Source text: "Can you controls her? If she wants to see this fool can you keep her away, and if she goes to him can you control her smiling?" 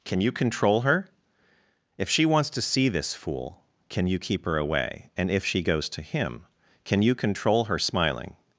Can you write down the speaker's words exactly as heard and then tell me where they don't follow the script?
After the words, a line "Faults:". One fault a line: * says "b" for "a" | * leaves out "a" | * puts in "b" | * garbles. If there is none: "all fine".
"Can you control her? If she wants to see this fool can you keep her away, and if she goes to him can you control her smiling?"
Faults:
* says "control" for "controls"